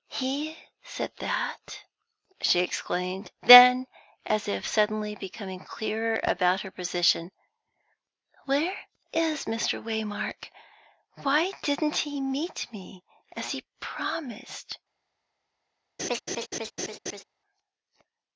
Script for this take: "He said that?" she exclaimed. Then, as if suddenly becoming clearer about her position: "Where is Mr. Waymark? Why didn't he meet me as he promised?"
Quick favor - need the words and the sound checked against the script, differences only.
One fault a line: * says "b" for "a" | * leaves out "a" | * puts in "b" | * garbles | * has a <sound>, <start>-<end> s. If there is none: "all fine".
* has a laugh, 16.0-17.2 s